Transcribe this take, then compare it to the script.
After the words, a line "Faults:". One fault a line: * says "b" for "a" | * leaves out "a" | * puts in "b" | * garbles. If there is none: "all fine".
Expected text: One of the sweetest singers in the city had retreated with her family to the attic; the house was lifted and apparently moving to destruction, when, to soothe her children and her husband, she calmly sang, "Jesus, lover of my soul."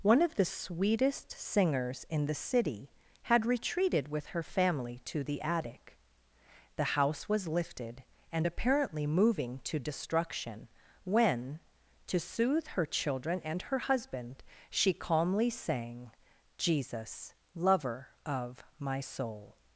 One of the sweetest singers in the city had retreated with her family to the attic; the house was lifted and apparently moving to destruction, when, to soothe her children and her husband, she calmly sang, "Jesus, lover of my soul."
Faults:
all fine